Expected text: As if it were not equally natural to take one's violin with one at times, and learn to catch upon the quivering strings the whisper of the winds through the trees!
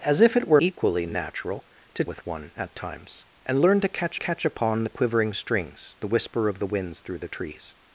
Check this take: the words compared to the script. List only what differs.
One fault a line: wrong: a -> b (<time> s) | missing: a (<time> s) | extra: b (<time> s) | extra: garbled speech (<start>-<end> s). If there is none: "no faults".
missing: not (0.6 s)
missing: take one's violin (2.0 s)
extra: catch (4.2 s)